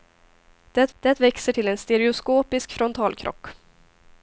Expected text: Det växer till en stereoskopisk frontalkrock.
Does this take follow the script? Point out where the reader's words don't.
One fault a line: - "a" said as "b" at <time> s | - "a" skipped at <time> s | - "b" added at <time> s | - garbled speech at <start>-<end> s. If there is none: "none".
- "det" added at 1.0 s